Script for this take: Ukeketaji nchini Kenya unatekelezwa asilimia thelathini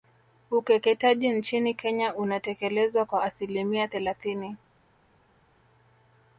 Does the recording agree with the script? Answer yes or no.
no